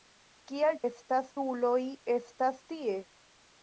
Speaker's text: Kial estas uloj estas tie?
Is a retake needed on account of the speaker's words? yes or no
no